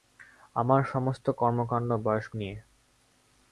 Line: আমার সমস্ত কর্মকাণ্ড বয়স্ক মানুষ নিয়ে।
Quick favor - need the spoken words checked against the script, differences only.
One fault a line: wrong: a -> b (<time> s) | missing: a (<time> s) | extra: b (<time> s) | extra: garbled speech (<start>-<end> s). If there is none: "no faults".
missing: মানুষ (2.3 s)